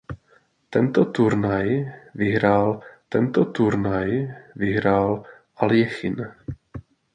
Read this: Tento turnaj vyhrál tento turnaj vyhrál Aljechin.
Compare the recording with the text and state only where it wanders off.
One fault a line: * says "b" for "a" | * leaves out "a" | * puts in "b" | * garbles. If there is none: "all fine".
all fine